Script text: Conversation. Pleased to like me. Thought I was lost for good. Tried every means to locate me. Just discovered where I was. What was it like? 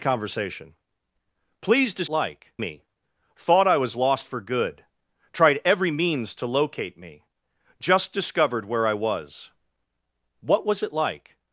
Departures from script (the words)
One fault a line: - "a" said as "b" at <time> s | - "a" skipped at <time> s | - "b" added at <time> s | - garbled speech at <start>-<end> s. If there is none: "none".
none